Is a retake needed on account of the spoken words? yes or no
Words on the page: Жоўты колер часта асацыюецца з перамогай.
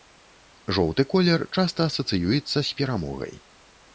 no